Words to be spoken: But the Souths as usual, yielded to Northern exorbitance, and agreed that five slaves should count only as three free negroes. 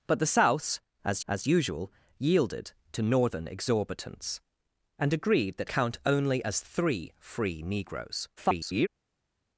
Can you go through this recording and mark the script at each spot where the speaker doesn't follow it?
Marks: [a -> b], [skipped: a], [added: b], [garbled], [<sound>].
But the Souths as [added: as] usual, yielded to Northern exorbitance, and agreed that [skipped: five slaves should] count only as three free negroes. [garbled]